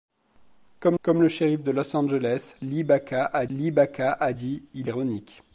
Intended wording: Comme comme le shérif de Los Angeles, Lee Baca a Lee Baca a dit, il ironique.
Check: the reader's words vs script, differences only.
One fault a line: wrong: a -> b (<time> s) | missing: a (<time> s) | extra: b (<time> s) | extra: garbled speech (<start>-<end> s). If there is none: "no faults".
no faults